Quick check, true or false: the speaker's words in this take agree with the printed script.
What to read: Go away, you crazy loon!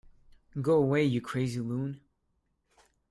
true